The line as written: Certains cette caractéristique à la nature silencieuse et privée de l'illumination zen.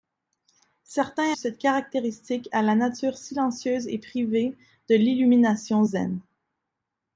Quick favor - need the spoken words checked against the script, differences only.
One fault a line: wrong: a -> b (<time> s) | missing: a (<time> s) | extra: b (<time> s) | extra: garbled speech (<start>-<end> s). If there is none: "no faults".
no faults